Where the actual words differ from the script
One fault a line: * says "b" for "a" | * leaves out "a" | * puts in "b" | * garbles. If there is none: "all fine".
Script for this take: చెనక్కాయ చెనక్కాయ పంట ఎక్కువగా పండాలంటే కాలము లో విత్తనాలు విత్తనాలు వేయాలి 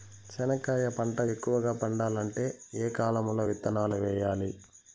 * leaves out "చెనక్కాయ"
* puts in "ఏ"
* leaves out "విత్తనాలు"